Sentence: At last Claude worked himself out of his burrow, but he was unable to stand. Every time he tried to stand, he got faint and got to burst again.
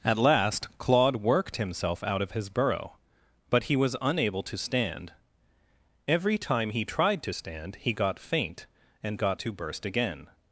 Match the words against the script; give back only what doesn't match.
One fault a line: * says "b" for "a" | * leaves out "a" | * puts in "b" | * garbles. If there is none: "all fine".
all fine